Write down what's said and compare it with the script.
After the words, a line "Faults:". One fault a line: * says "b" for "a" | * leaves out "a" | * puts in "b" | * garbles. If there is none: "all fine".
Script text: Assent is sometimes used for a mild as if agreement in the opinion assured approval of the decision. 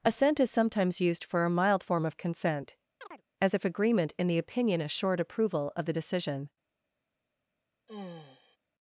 Assent is sometimes used for a mild form of consent, as if agreement in the opinion assured approval of the decision.
Faults:
* puts in "form of consent"